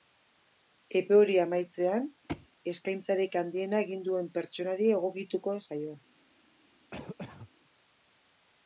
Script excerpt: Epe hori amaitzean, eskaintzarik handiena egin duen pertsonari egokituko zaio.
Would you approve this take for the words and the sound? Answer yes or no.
no